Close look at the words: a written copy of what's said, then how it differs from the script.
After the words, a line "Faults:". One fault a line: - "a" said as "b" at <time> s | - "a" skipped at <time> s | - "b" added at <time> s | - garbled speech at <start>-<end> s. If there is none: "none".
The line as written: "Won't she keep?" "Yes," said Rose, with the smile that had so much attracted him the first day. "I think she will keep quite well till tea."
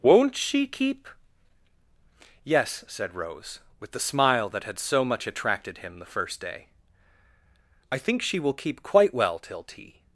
"Won't she keep?" "Yes," said Rose, with the smile that had so much attracted him the first day. "I think she will keep quite well till tea."
Faults:
none